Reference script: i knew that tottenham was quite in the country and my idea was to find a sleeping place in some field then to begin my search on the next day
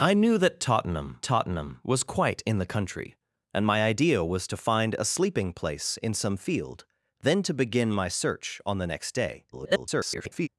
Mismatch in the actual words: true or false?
true